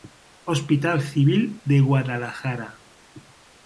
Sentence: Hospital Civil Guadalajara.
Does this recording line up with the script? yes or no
no